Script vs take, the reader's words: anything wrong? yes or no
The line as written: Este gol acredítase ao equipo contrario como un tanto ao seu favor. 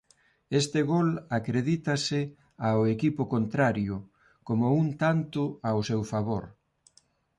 no